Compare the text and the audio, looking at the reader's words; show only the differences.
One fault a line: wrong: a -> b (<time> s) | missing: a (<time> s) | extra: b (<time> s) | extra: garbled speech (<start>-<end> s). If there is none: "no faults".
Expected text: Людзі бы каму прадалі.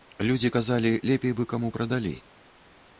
extra: казалі лепей (0.5 s)